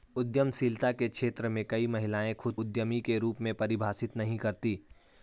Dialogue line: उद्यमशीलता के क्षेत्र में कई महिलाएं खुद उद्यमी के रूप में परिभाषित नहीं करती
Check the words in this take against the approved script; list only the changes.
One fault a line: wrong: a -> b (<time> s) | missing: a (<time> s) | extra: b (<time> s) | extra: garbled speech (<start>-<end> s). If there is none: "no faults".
no faults